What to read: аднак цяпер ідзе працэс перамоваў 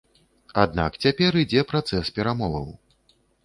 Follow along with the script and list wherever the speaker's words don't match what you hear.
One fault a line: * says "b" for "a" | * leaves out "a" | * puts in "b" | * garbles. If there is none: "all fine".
all fine